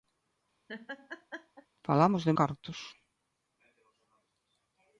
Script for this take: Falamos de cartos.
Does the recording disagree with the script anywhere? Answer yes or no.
no